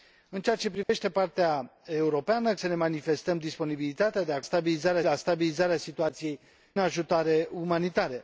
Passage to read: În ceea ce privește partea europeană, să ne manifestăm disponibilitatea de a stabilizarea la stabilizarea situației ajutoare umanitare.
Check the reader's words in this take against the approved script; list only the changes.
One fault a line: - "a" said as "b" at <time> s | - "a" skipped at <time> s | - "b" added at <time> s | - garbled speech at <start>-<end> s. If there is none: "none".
none